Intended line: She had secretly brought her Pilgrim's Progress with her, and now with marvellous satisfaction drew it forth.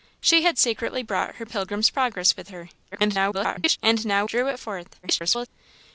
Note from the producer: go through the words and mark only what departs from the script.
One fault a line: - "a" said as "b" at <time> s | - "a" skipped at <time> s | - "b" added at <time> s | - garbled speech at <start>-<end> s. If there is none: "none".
- garbled speech at 2.9-3.8 s
- "with marvellous satisfaction" skipped at 4.3 s
- garbled speech at 5.0-5.5 s